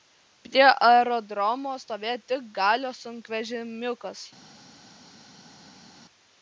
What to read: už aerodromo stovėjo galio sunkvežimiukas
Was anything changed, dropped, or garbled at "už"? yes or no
yes